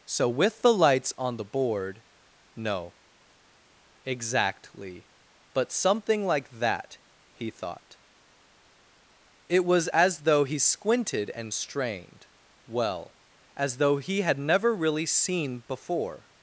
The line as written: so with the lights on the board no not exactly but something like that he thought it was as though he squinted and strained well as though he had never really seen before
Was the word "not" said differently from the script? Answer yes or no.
yes